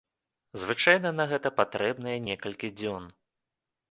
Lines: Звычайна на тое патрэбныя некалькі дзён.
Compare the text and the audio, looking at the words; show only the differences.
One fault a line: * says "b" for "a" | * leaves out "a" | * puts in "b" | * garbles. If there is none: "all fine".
* says "гэта" for "тое"